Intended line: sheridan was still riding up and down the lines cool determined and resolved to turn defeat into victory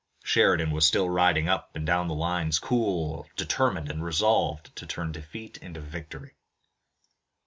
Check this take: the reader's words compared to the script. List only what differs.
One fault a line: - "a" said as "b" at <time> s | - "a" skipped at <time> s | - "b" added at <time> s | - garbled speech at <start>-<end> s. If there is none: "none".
none